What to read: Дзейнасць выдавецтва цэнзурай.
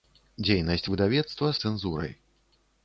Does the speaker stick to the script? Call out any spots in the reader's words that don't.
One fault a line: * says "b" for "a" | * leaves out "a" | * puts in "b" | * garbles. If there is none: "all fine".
all fine